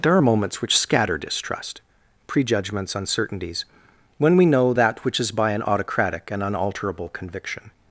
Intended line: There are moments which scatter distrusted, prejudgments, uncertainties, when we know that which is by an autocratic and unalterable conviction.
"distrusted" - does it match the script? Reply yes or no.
no